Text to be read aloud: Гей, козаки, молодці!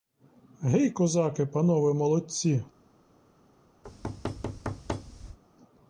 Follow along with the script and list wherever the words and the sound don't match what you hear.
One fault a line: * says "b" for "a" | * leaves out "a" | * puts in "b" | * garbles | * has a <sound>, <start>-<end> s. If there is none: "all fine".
* puts in "панове"
* has a thud, 3.8-5.4 s